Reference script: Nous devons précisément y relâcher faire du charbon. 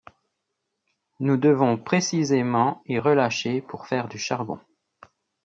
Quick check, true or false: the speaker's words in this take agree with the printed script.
false